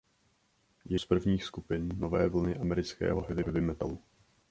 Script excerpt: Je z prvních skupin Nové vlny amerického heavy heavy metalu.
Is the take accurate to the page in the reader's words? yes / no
yes